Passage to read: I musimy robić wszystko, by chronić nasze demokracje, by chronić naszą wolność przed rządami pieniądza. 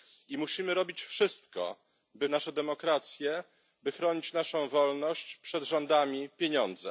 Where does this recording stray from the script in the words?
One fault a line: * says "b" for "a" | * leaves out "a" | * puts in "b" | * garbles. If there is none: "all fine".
* leaves out "chronić"